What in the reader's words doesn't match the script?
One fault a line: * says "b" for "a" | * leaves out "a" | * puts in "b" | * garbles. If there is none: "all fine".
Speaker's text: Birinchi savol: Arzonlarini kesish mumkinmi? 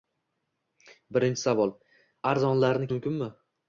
* leaves out "kesish"